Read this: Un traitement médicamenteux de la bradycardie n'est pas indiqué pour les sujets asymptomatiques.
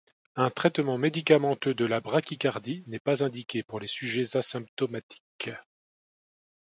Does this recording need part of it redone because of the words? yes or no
no